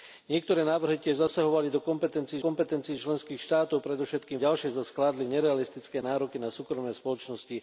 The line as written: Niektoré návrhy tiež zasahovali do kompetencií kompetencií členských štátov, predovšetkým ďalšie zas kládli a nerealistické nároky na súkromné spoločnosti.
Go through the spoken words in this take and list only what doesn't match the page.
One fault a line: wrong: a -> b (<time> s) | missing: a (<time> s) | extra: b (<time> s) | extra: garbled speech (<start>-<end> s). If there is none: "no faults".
no faults